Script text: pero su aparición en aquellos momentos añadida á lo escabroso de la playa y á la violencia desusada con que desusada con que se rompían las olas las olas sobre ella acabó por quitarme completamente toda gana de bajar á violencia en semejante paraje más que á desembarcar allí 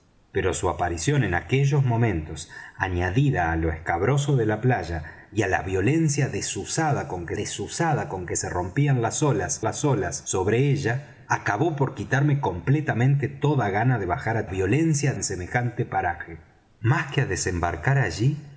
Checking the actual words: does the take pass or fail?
pass